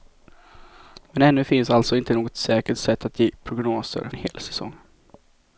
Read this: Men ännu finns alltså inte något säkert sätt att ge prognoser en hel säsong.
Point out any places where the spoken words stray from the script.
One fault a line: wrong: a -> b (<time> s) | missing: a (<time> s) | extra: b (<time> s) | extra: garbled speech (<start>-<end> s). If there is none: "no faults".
no faults